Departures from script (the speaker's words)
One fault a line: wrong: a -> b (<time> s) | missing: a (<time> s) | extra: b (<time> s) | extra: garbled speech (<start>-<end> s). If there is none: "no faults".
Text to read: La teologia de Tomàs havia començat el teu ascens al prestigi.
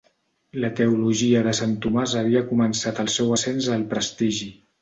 extra: Sant (1.6 s)
wrong: teu -> seu (3.2 s)